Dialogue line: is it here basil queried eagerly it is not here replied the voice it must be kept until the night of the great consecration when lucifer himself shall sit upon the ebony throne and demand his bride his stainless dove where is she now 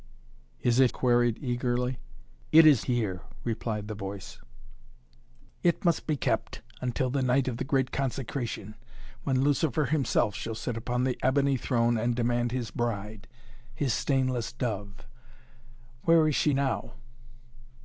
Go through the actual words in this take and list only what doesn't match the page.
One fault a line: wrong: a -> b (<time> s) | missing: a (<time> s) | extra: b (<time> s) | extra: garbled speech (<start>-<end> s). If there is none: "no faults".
missing: here basil (0.9 s)
missing: not (2.9 s)